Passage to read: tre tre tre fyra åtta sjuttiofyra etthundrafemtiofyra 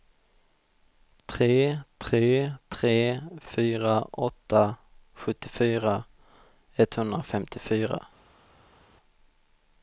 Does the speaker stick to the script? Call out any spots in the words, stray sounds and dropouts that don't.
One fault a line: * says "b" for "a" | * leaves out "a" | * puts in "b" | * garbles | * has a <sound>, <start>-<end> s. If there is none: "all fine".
all fine